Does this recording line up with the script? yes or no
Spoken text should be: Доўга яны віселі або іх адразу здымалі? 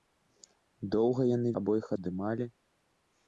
no